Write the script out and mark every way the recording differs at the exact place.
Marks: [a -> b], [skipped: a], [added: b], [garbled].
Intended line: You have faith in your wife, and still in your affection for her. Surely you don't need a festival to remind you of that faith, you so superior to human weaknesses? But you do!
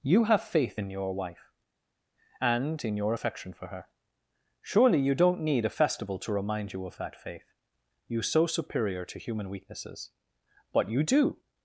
You have faith in your wife, and [skipped: still] in your affection for her. Surely you don't need a festival to remind you of that faith, you so superior to human weaknesses? But you do!